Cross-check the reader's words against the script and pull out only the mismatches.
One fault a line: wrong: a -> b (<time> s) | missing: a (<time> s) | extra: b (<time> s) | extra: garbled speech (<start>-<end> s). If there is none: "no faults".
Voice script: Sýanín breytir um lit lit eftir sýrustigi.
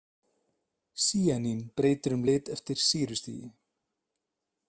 missing: lit (2.5 s)